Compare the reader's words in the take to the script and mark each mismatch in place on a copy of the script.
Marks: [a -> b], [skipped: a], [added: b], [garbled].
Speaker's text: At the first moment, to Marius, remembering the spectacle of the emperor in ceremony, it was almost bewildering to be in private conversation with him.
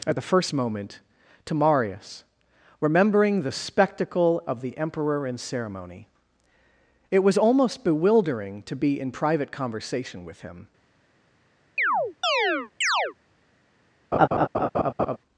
At the first moment, to Marius, remembering the spectacle of the emperor in ceremony, it was almost bewildering to be in private conversation with him.